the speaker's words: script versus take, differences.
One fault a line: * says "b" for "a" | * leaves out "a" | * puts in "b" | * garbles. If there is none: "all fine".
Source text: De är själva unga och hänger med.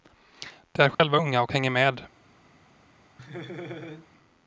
all fine